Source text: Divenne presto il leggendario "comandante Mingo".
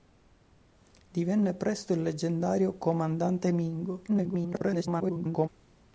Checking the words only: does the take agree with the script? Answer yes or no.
no